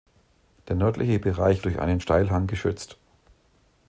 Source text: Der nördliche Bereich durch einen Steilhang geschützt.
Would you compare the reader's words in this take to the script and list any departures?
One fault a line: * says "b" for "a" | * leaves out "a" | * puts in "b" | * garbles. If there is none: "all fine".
all fine